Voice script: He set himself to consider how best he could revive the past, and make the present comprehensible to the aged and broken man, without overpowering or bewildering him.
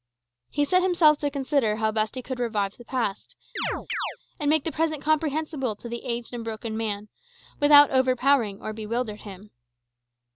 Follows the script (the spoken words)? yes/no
yes